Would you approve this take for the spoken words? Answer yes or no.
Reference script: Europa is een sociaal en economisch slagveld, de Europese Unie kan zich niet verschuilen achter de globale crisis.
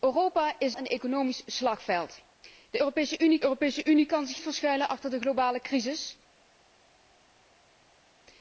no